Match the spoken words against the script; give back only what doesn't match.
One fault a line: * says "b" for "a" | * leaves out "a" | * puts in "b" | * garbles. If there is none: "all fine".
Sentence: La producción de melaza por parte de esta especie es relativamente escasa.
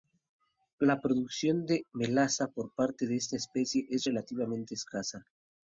all fine